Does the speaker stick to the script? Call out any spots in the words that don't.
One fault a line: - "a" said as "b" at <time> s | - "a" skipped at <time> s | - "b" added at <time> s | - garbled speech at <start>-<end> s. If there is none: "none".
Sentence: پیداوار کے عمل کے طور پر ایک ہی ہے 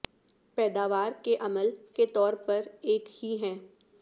none